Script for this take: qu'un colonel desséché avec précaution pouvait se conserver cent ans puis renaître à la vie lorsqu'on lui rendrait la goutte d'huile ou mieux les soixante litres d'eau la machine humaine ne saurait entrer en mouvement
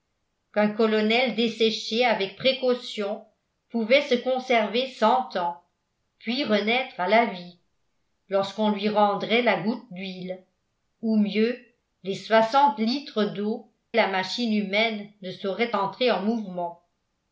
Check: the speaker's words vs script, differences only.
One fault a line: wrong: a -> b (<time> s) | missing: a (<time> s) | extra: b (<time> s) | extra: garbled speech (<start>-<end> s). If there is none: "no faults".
no faults